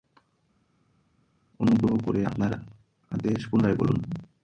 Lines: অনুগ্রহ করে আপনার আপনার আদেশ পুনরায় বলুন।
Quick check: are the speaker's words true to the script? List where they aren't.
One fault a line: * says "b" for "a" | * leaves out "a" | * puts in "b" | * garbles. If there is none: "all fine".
* leaves out "আপনার"